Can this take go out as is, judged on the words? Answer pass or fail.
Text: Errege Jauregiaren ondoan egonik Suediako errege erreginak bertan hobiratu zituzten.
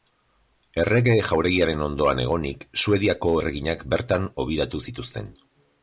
fail